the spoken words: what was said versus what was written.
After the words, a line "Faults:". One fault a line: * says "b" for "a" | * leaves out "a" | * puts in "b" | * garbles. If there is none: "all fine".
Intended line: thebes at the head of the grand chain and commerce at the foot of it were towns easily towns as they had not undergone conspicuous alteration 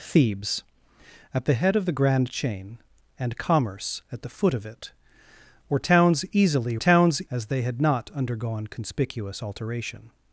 thebes at the head of the grand chain and commerce at the foot of it were towns easily towns as they had not undergone conspicuous alteration
Faults:
all fine